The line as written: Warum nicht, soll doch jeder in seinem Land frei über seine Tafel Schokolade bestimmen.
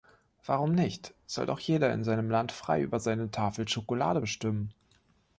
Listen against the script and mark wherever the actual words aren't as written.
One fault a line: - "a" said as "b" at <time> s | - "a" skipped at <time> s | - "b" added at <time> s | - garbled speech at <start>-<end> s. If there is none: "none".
none